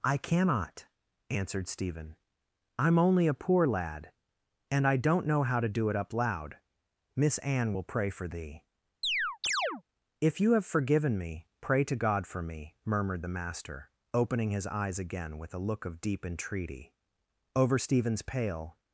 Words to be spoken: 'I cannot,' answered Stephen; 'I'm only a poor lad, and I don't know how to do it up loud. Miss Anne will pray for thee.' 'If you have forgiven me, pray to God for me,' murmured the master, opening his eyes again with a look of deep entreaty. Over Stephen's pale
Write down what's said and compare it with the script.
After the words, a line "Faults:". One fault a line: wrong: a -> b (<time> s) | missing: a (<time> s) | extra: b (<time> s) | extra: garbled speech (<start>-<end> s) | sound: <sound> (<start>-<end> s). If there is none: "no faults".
'I cannot,' answered Stephen; 'I'm only a poor lad, and I don't know how to do it up loud. Miss Anne will pray for thee.' 'If you have forgiven me, pray to God for me,' murmured the master, opening his eyes again with a look of deep entreaty. Over Stephen's pale
Faults:
sound: chirp (9.0-9.8 s)